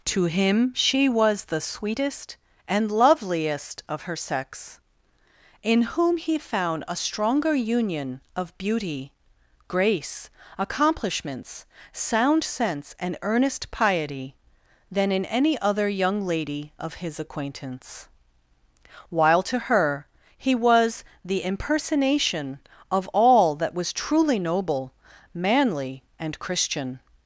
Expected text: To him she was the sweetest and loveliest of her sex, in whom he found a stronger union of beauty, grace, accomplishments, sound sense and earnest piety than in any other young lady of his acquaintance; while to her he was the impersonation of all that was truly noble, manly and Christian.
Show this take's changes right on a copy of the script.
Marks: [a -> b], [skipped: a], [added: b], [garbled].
To him she was the sweetest and loveliest of her sex, in whom he found a stronger union of beauty, grace, accomplishments, sound sense and earnest piety than in any other young lady of his acquaintance; while to her he was the impersonation of all that was truly noble, manly and Christian.